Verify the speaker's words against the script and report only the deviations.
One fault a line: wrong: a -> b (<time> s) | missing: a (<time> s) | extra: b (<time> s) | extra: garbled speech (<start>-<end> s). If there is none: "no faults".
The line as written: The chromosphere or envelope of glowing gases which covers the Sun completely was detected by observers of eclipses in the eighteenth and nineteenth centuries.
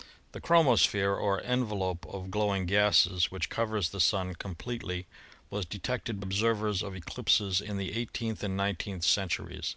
missing: by (6.2 s)